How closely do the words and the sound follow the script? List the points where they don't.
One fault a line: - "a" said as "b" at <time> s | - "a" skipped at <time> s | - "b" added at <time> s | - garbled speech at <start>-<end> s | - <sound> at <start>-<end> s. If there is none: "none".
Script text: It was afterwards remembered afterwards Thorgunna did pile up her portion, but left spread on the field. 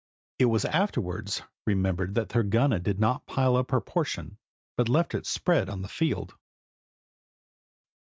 - "afterwards" said as "that" at 2.1 s
- "not" added at 3.0 s
- "it" added at 5.1 s